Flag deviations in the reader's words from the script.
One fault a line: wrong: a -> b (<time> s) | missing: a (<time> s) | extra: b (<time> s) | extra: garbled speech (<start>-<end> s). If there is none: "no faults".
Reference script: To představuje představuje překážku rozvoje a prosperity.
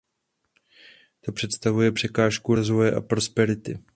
missing: představuje (1.9 s)